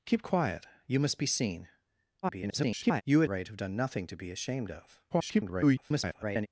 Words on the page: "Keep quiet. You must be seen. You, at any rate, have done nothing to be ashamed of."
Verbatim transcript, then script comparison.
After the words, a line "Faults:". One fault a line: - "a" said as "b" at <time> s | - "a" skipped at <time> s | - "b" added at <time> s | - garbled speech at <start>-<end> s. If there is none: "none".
"Keep quiet. You must be seen. [garbled] You, at rate, have done nothing to be ashamed of." [garbled]
Faults:
- garbled speech at 2.2-3.0 s
- "any" skipped at 3.3 s
- garbled speech at 5.1-6.5 s